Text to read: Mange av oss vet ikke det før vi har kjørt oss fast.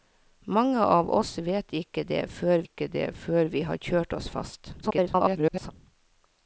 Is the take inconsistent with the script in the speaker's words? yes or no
yes